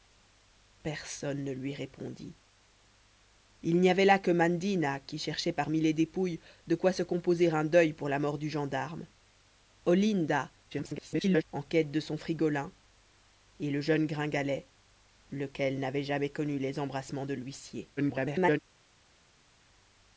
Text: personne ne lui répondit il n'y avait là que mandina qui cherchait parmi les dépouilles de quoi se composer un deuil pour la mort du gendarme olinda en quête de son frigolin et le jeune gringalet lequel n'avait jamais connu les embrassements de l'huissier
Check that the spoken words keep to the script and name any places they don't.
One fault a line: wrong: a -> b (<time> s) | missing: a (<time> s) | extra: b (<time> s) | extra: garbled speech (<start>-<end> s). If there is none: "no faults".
extra: garbled speech (10.7-11.4 s)
extra: garbled speech (18.0-18.6 s)